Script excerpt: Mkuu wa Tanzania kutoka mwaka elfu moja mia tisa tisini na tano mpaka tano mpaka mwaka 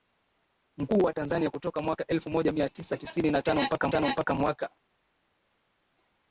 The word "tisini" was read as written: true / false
true